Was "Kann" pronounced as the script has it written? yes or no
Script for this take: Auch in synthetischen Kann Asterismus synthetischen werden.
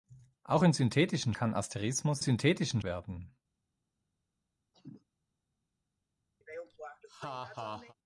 yes